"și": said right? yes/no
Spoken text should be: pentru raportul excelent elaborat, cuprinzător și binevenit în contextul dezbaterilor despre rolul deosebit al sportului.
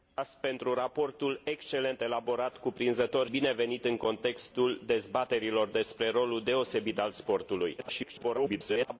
no